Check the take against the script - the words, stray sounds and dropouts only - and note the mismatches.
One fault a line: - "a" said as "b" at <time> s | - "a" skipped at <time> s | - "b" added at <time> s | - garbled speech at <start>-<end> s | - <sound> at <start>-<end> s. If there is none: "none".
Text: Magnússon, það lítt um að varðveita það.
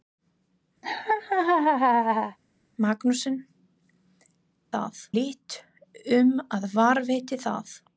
- laugh at 0.8-2.4 s